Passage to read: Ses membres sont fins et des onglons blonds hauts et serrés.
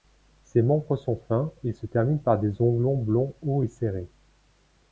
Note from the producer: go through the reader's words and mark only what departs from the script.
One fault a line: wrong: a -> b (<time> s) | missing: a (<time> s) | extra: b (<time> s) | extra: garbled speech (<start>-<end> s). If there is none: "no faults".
extra: se terminent par (1.7 s)